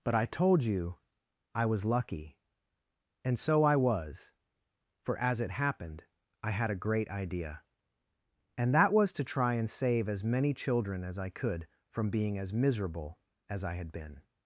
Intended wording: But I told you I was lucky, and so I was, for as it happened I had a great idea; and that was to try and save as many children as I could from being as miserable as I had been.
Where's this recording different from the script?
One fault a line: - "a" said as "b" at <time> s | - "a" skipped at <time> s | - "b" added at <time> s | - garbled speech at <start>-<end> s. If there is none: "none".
none